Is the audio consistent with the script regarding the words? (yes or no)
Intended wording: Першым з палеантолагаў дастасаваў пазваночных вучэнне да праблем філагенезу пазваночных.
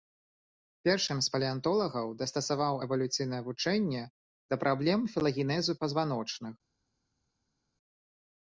no